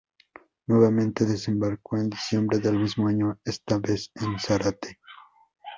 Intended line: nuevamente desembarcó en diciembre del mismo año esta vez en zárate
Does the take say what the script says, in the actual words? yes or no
yes